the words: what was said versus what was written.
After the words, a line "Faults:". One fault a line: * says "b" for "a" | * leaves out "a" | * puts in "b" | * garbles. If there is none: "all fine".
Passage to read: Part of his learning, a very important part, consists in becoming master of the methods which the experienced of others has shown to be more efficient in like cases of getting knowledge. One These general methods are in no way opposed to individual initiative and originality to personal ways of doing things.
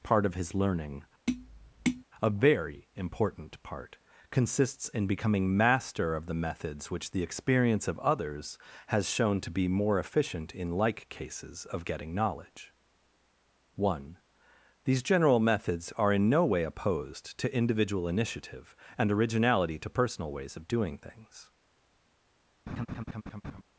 Part of his learning, a very important part, consists in becoming master of the methods which the experience of others has shown to be more efficient in like cases of getting knowledge. One These general methods are in no way opposed to individual initiative and originality to personal ways of doing things.
Faults:
* says "experience" for "experienced"